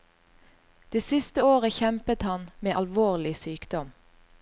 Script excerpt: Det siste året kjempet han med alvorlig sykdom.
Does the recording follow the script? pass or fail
pass